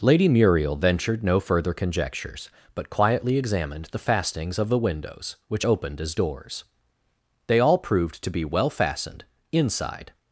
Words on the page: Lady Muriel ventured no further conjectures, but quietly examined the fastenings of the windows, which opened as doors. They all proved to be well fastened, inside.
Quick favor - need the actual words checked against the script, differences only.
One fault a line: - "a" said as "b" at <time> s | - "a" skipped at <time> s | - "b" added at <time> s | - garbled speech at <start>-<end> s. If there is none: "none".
none